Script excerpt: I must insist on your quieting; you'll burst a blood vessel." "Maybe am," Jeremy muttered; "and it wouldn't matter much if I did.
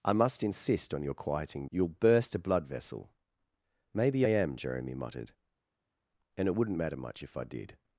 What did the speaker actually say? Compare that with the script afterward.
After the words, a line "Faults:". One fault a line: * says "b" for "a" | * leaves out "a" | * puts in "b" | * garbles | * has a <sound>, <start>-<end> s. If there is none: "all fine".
I must insist on your quieting; you'll burst a blood vessel." "Maybe am," Jeremy muttered; "and it wouldn't matter much if I did.
Faults:
all fine